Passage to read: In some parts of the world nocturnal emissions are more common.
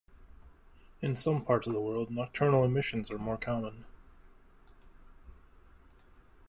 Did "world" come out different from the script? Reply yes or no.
no